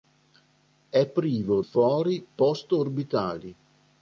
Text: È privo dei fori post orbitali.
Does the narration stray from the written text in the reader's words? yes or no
yes